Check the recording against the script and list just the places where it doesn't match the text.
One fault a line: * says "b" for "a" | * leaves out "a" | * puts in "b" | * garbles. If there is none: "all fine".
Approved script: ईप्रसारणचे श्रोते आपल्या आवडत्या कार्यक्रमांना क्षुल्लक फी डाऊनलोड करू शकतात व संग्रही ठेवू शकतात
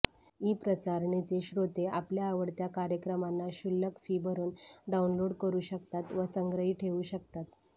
* puts in "भरून"